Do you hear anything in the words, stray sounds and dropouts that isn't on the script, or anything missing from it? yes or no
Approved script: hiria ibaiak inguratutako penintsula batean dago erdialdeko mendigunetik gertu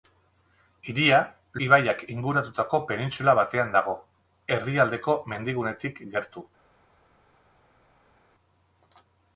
no